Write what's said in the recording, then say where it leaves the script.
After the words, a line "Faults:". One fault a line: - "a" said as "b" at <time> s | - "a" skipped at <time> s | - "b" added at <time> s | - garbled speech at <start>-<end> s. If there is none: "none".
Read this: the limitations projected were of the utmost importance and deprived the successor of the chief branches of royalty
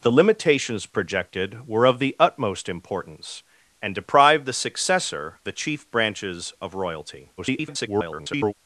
the limitations projected were of the utmost importance and deprived the successor the chief branches of royalty [garbled]
Faults:
- "of" skipped at 5.4 s
- garbled speech at 7.4-8.5 s